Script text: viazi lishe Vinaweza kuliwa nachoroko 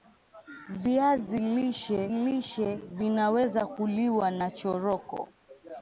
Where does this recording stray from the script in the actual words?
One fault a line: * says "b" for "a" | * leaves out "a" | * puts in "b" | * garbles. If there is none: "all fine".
* puts in "lishe"